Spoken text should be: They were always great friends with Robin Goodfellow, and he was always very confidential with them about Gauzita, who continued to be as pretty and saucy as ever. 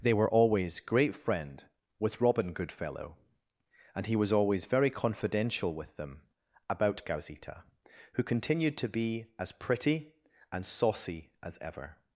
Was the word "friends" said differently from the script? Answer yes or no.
yes